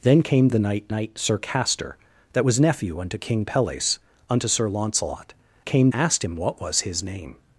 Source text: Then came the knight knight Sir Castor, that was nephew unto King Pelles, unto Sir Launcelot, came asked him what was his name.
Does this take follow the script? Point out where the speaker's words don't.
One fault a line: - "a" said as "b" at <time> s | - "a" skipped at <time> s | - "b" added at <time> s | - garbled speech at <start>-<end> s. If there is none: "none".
none